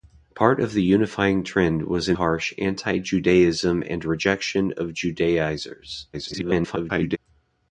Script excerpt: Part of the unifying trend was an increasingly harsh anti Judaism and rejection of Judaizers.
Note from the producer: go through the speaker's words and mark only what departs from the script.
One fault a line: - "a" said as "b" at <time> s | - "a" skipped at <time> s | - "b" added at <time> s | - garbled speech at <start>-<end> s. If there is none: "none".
- "increasingly" skipped at 2.2 s
- garbled speech at 6.1-7.2 s